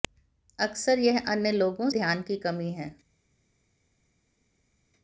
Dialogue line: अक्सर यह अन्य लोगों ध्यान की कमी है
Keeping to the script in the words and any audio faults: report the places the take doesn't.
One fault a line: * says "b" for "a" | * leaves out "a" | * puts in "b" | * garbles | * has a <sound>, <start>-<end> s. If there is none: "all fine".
all fine